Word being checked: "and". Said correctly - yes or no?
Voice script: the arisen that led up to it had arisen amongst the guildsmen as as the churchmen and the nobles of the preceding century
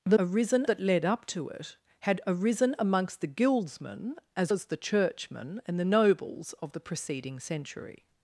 yes